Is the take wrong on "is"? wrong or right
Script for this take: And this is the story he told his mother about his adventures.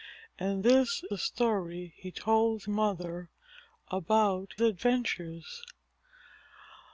wrong